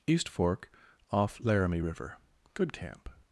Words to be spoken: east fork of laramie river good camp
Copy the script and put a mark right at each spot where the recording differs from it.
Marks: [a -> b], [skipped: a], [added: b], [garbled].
east fork [of -> off] laramie river good camp